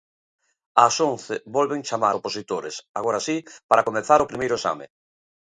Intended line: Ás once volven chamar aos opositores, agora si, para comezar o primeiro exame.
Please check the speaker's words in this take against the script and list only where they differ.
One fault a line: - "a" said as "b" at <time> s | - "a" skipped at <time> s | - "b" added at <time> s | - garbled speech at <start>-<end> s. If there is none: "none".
- "aos" skipped at 2.1 s